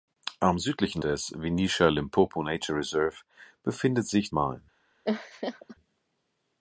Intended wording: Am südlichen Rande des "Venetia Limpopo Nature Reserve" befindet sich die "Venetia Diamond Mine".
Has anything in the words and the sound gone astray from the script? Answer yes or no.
yes